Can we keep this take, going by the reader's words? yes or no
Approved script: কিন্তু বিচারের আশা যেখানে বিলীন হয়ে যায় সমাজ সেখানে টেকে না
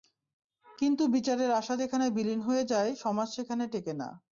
yes